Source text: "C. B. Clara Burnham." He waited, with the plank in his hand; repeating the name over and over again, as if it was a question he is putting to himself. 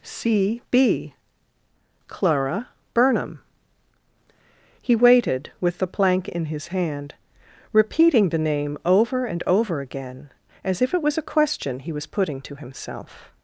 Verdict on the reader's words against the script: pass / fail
fail